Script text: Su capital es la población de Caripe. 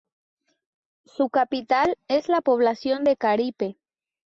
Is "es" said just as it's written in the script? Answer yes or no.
yes